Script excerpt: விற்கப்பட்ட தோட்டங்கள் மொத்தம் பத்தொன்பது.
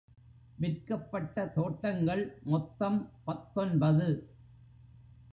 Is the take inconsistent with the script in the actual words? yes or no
no